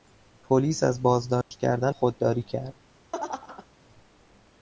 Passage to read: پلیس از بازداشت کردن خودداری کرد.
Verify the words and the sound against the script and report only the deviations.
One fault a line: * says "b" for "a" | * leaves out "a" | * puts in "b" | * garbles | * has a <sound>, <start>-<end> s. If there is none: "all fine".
* has a dropout, 1.4-1.5 s
* has a laugh, 3.1-3.7 s